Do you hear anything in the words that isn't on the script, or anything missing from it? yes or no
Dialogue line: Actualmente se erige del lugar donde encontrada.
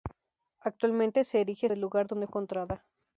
no